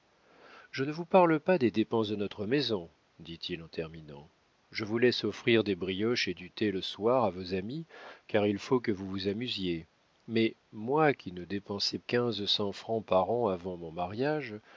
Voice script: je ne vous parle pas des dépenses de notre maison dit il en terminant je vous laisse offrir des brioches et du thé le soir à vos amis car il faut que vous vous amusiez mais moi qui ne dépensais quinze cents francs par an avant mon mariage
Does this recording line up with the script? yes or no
yes